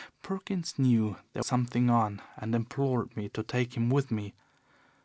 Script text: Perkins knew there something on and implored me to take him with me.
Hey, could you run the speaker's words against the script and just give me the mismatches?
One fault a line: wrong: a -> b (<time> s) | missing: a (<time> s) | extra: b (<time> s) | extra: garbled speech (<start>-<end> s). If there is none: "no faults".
no faults